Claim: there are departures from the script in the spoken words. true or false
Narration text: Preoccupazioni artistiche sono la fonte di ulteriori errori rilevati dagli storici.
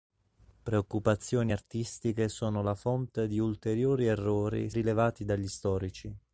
false